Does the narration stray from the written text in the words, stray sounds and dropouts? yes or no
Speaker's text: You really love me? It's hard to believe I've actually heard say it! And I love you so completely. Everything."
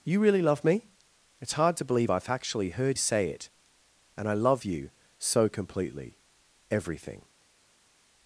no